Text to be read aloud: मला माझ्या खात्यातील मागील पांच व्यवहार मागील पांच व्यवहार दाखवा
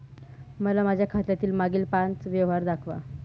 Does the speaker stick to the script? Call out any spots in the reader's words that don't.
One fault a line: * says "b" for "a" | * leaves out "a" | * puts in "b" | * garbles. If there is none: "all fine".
* leaves out "मागील पांच व्यवहार"